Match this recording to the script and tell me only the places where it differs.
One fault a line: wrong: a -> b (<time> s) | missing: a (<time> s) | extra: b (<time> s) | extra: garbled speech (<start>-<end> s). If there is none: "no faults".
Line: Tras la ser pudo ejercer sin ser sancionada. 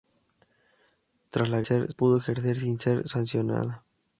no faults